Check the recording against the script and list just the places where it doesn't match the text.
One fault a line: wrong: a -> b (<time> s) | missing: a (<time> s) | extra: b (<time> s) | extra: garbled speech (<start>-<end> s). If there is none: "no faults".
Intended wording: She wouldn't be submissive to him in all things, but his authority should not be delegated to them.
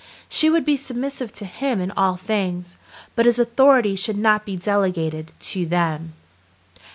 wrong: wouldn't -> would (0.5 s)